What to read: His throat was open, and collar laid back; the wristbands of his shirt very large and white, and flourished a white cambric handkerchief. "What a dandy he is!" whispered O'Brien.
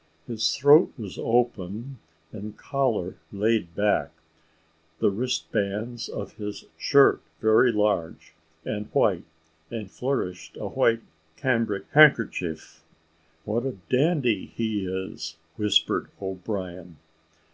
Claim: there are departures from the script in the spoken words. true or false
false